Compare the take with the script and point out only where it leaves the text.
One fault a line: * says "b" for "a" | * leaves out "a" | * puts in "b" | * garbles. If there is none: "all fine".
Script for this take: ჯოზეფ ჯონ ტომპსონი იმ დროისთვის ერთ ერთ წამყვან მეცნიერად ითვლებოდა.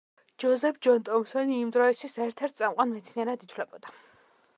all fine